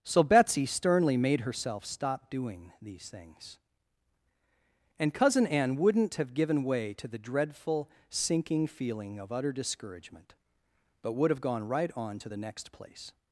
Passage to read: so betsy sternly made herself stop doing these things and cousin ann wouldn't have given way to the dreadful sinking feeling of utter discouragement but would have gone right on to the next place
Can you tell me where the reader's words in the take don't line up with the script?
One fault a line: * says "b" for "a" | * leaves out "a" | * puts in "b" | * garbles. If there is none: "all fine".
all fine